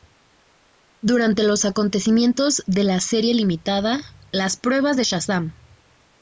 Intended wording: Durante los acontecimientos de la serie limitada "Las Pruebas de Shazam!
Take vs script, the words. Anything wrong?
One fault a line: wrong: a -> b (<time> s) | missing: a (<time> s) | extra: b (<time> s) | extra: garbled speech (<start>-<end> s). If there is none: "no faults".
no faults